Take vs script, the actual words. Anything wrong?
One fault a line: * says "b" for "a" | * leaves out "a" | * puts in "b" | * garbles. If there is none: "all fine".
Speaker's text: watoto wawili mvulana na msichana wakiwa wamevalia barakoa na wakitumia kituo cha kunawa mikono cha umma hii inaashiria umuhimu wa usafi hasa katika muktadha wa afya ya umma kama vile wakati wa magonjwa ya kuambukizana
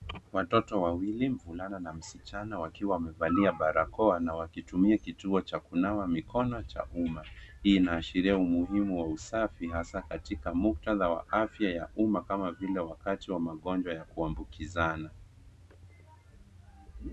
all fine